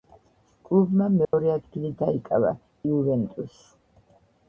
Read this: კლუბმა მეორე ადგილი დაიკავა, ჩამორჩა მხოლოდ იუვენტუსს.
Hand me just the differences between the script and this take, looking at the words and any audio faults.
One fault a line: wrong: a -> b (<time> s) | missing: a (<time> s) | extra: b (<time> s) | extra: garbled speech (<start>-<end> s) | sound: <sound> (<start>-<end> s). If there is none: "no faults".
sound: dropout (1.2-1.3 s)
missing: ჩამორჩა მხოლოდ (2.5 s)